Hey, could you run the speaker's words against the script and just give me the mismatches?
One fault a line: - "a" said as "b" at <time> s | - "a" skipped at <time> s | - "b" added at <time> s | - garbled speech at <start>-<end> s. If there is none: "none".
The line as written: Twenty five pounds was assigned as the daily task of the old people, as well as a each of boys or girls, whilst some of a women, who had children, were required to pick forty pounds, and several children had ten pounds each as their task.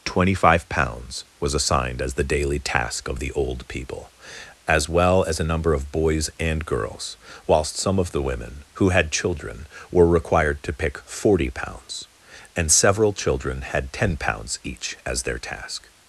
- "each" said as "number" at 5.4 s
- "or" said as "and" at 6.4 s
- "a" said as "the" at 8.1 s